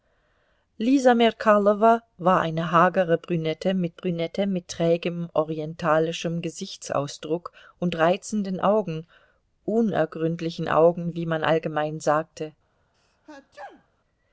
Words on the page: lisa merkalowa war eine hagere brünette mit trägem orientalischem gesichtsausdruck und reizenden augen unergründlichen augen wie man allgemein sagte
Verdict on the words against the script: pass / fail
fail